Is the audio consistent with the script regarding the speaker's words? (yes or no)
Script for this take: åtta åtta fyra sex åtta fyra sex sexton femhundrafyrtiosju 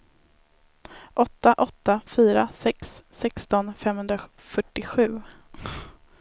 no